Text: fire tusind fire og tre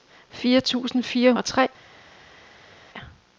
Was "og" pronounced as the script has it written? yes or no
yes